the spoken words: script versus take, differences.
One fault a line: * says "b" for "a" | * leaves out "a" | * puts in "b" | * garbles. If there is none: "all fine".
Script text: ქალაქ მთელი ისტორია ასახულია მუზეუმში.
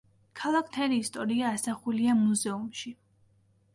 all fine